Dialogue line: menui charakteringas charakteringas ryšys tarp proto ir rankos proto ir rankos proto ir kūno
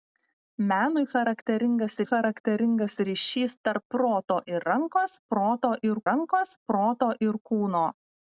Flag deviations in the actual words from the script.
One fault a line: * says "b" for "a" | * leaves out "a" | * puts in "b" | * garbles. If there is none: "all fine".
all fine